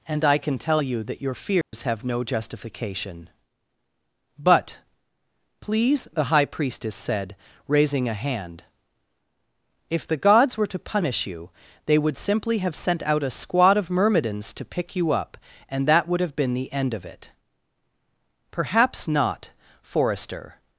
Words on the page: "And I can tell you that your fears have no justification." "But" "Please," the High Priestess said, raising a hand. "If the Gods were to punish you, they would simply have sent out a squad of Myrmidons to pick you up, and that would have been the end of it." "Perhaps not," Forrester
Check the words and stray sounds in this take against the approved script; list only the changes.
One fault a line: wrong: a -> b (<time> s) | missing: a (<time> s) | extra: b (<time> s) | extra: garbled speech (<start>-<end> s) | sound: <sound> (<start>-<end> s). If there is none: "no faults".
sound: dropout (1.6-1.7 s)